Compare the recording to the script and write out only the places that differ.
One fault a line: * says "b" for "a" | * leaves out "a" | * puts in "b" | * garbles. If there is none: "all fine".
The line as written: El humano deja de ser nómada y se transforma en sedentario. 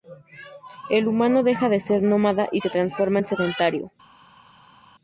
all fine